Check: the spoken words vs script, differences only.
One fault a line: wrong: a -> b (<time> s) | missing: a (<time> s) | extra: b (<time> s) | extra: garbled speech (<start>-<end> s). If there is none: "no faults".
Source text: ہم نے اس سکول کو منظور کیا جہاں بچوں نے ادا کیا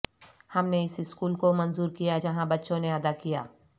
no faults